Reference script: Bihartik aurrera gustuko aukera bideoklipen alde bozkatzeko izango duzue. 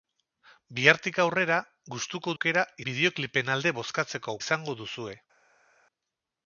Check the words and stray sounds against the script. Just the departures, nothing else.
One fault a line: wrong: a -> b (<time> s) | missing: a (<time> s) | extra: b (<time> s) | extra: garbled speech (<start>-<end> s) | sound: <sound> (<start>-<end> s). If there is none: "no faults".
no faults